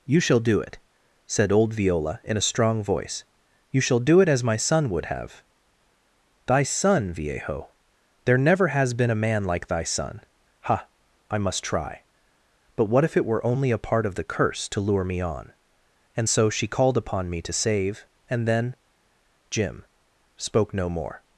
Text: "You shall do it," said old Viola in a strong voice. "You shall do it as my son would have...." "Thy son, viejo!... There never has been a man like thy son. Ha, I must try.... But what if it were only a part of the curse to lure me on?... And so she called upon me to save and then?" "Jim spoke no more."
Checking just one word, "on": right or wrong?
right